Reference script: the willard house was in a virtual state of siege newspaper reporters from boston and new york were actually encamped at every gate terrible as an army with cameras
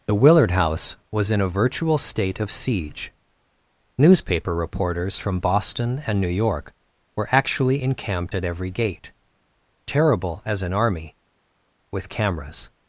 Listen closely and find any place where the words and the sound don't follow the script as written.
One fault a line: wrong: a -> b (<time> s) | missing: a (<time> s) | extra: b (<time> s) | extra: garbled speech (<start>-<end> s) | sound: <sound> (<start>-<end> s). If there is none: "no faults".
no faults